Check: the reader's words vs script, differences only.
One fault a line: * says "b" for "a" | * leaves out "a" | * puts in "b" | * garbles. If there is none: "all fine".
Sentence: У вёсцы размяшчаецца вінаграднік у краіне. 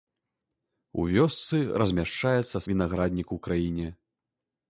all fine